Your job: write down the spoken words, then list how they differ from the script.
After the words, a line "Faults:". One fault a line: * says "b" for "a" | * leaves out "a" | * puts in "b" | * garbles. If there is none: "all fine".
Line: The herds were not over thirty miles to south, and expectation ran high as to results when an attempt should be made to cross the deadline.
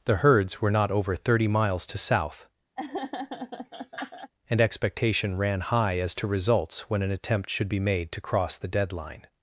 The herds were not over thirty miles to south, and expectation ran high as to results when an attempt should be made to cross the deadline.
Faults:
all fine